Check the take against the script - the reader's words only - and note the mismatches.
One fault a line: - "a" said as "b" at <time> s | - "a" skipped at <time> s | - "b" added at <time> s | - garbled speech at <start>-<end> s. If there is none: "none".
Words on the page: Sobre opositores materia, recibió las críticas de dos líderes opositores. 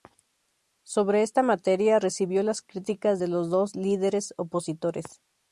- "opositores" said as "esta" at 1.2 s
- "los" added at 3.3 s